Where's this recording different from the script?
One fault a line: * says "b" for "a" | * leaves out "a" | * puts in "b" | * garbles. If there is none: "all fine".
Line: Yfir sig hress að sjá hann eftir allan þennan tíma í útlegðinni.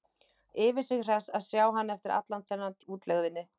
* leaves out "tíma"